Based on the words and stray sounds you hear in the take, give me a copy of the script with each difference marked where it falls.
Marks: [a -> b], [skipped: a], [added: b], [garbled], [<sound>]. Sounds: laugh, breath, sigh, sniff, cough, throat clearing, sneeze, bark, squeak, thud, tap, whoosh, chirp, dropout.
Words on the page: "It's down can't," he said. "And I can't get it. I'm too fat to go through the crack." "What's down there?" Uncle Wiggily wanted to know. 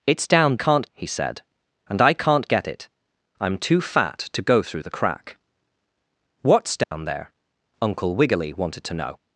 "It's down can't," he said. "And I can't get it. I'm too fat to go through the crack." "What's down [dropout] there?" Uncle Wiggily wanted to know.